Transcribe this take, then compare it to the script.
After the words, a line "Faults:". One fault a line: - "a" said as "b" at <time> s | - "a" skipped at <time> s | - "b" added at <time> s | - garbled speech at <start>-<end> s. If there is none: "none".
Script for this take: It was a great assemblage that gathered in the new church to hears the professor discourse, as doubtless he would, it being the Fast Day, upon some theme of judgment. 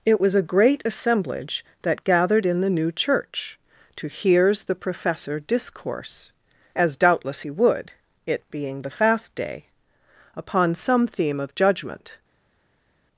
It was a great assemblage that gathered in the new church to hears the professor discourse, as doubtless he would, it being the Fast Day, upon some theme of judgment.
Faults:
none